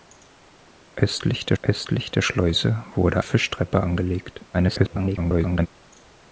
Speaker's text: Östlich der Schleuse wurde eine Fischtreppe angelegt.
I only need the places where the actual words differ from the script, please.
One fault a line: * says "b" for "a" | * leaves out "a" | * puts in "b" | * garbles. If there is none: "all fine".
* puts in "östlich der"
* leaves out "eine"
* garbles